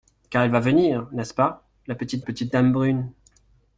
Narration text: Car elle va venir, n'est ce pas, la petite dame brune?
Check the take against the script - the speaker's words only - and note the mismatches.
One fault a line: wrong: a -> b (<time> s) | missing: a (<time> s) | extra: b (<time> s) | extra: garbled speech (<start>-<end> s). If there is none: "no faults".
extra: petite (2.2 s)